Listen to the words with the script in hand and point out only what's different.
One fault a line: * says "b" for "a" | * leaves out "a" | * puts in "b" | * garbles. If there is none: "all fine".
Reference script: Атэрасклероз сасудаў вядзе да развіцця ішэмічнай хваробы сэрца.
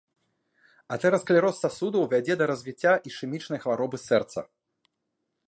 all fine